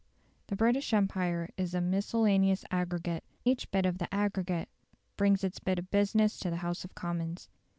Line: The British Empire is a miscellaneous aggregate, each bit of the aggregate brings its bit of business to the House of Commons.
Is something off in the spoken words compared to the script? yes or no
no